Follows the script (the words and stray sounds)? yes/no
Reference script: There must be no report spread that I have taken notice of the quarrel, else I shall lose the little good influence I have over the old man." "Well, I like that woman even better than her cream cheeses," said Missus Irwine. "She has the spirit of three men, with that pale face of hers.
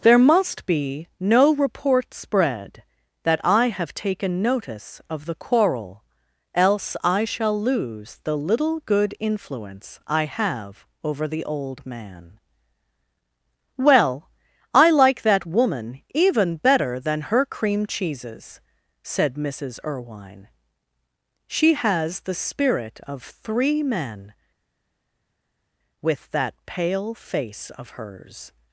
yes